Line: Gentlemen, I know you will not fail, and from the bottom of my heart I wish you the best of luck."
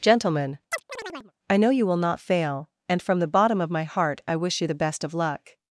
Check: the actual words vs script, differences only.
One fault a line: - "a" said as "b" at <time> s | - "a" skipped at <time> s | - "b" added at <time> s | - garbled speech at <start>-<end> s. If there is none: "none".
none